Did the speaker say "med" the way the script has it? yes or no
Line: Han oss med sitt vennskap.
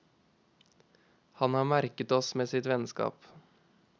yes